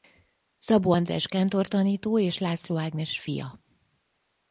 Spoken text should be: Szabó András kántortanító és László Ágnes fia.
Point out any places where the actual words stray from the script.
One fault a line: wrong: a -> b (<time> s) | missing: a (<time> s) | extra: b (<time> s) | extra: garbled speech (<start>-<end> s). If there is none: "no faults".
no faults